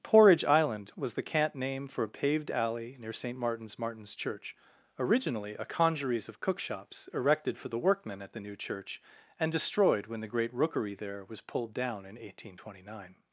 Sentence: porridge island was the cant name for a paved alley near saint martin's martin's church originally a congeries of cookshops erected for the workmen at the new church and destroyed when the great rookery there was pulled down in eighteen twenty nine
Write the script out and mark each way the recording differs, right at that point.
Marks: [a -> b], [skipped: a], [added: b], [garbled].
porridge island was the cant name for a paved alley near saint martin's martin's church originally a congeries of cookshops erected for the workmen at the new church and destroyed when the great rookery there was pulled down in eighteen twenty nine